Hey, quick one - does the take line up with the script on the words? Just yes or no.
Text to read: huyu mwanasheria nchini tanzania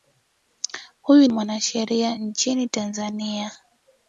yes